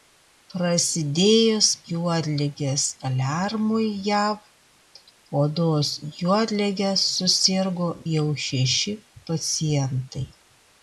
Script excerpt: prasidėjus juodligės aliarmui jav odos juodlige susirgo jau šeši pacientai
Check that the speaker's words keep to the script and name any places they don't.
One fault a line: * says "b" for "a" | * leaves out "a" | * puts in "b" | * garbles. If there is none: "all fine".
all fine